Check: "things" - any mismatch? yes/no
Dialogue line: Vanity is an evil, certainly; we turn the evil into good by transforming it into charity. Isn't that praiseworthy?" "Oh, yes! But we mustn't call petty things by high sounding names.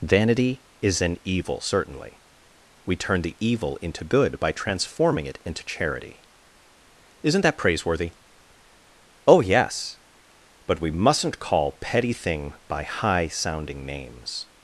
yes